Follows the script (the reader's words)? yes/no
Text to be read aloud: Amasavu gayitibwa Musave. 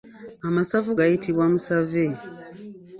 yes